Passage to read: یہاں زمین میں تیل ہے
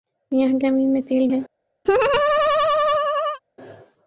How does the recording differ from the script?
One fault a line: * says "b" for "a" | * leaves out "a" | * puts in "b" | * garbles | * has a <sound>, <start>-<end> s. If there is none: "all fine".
* has a laugh, 1.8-3.4 s